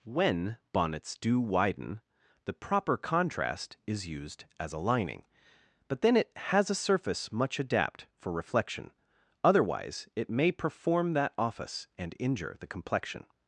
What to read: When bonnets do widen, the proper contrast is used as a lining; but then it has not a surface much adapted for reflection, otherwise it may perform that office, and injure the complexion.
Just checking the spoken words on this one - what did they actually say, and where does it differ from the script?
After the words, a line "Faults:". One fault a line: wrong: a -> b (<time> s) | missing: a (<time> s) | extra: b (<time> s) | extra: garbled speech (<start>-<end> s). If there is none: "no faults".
When bonnets do widen, the proper contrast is used as a lining; but then it has a surface much adapt for reflection, otherwise it may perform that office, and injure the complexion.
Faults:
missing: not (6.7 s)
wrong: adapted -> adapt (7.6 s)